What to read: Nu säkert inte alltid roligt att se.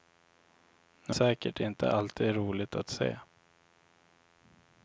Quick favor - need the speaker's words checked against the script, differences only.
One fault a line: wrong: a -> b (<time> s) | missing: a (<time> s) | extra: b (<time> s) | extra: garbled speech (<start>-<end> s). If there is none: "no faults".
no faults